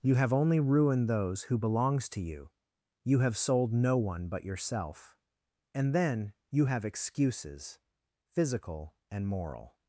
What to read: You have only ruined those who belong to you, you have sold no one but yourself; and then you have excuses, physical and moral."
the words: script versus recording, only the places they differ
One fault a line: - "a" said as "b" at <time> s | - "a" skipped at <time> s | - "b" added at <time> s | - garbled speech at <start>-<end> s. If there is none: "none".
- "belong" said as "belongs" at 1.6 s